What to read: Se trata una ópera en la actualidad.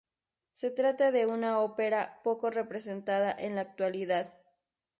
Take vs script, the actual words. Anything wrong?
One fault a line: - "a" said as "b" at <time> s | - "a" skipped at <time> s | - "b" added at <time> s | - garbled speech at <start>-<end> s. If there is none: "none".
- "de" added at 1.1 s
- "poco representada" added at 2.2 s